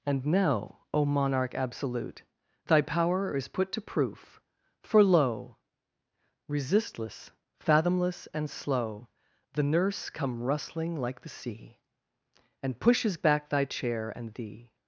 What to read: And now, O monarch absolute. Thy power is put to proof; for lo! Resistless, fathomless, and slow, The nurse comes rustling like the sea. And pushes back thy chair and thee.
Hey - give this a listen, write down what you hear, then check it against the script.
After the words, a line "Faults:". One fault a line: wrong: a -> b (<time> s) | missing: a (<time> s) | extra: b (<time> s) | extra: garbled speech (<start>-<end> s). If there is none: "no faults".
And now, O monarch absolute. Thy power is put to proof; for lo! Resistless, fathomless, and slow, The nurse come rustling like the sea. And pushes back thy chair and thee.
Faults:
wrong: comes -> come (10.1 s)